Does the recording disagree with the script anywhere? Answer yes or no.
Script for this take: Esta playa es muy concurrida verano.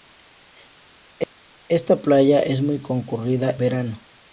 no